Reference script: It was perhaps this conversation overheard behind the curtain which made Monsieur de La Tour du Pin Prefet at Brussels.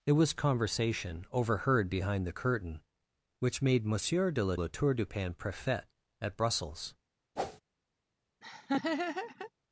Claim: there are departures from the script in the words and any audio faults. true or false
true